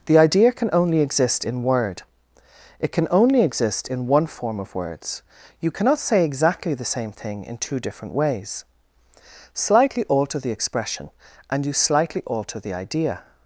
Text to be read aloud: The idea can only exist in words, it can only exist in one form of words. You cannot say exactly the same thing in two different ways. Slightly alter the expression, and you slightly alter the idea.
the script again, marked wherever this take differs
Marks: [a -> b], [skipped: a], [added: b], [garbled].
The idea can only exist in [words, -> word] it can only exist in one form of words. You cannot say exactly the same thing in two different ways. Slightly alter the expression, and you slightly alter the idea.